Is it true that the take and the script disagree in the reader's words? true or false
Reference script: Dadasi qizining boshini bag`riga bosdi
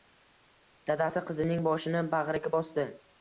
false